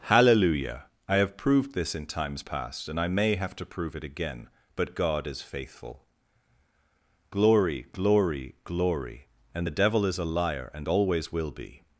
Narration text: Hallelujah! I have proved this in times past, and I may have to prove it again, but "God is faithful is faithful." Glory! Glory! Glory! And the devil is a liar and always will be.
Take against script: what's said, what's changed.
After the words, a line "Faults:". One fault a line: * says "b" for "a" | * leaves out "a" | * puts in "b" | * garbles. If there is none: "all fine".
Hallelujah! I have proved this in times past, and I may have to prove it again, but "God is faithful." Glory! Glory! Glory! And the devil is a liar and always will be.
Faults:
* leaves out "is faithful"